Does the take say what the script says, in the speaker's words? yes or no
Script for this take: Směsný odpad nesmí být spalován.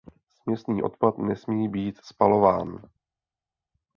yes